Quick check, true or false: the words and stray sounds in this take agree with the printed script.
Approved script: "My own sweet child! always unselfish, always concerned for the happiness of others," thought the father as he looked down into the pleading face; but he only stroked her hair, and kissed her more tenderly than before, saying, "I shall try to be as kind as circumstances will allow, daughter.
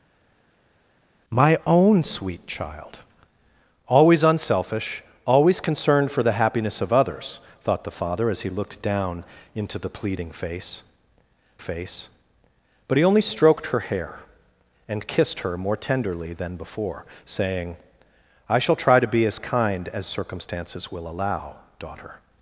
false